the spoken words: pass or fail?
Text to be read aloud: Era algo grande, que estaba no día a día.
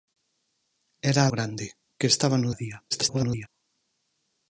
fail